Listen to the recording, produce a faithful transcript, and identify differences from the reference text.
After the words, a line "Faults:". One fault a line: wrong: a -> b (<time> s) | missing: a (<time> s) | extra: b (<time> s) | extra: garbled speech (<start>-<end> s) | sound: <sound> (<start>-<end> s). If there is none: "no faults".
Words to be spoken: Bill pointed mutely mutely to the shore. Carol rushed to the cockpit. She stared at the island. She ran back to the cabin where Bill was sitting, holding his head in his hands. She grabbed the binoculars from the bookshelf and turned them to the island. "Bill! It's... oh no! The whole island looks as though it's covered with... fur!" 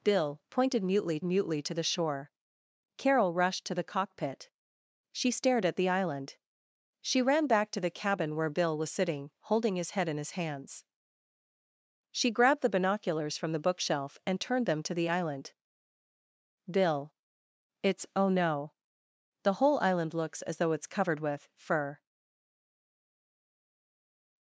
Bill pointed mutely mutely to the shore. Carol rushed to the cockpit. She stared at the island. She ran back to the cabin where Bill was sitting, holding his head in his hands. She grabbed the binoculars from the bookshelf and turned them to the island. "Bill! It's... oh no! The whole island looks as though it's covered with... fur!"
Faults:
no faults